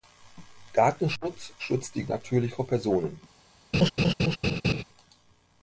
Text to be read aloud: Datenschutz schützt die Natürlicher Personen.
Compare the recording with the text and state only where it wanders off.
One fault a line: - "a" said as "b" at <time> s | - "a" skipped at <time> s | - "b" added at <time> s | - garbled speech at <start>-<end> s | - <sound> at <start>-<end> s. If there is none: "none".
- laugh at 3.7-4.8 s